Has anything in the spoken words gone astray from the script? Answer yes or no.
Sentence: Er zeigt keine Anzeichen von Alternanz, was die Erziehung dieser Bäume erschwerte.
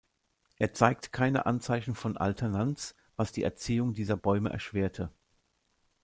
no